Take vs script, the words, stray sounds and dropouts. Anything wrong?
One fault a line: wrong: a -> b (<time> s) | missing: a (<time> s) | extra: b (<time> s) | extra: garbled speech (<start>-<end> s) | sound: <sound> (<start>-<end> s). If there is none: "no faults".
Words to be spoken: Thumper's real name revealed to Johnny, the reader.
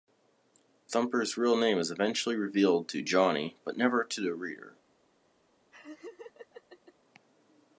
extra: is eventually (1.8 s)
extra: but never to (3.6 s)
sound: laugh (5.7-6.9 s)